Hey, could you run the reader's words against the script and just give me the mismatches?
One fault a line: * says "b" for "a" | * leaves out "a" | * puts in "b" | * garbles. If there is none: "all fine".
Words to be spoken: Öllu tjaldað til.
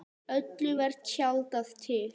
* puts in "var"